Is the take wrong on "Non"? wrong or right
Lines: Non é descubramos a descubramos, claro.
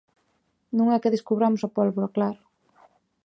right